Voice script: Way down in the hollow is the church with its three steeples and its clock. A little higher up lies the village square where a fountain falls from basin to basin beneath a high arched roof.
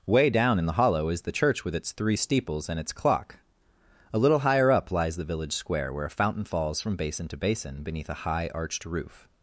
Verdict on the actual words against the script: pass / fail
pass